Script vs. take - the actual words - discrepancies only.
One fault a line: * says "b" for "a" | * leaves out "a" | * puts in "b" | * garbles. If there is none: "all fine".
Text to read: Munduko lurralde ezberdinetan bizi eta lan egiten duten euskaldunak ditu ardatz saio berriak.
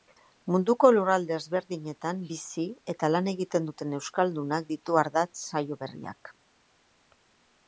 all fine